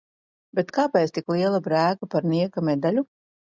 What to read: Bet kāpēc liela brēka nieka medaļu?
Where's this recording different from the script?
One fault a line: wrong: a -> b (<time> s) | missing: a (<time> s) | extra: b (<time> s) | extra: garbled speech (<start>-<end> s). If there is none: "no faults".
extra: tik (1.2 s)
extra: par (2.2 s)